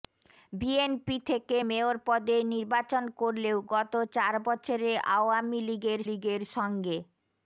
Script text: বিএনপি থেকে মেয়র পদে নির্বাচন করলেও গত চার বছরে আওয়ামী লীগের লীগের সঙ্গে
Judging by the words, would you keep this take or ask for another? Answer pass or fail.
pass